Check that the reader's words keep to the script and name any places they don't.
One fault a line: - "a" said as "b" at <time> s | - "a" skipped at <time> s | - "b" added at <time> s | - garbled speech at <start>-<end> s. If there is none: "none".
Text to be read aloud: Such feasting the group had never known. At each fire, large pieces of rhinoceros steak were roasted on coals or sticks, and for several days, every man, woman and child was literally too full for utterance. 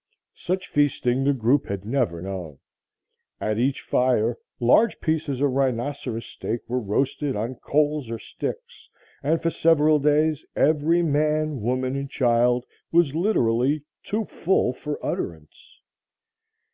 none